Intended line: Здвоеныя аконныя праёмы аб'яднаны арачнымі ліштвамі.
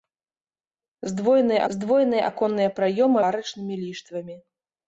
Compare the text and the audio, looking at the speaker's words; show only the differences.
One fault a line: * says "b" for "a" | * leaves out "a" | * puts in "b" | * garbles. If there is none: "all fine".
* puts in "здвоеныя"
* leaves out "аб'яднаны"